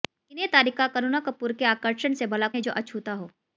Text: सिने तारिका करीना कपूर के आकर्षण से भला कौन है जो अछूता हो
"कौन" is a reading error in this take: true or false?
true